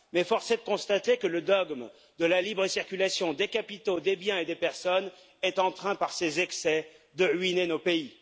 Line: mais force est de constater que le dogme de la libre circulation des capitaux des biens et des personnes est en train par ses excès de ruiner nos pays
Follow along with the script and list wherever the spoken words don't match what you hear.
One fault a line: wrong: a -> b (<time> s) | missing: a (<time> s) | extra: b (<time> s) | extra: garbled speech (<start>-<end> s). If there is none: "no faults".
no faults